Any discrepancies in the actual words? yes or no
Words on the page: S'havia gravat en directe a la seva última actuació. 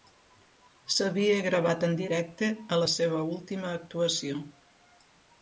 no